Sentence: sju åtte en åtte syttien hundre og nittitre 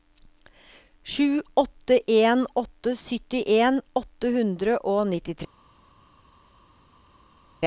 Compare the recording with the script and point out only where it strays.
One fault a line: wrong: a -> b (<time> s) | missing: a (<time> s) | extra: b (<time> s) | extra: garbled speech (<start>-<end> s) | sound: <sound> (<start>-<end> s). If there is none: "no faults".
extra: åtte (3.9 s)